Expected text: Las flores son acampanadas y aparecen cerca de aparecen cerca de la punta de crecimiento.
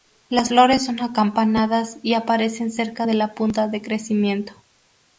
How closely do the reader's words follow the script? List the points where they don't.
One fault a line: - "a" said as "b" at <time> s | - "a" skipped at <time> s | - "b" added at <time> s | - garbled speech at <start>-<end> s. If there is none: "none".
- "aparecen cerca de" skipped at 3.1 s